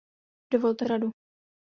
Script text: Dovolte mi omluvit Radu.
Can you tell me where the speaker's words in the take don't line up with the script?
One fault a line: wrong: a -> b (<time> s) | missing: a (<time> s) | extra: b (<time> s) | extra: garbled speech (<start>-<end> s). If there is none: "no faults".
missing: mi omluvit (0.8 s)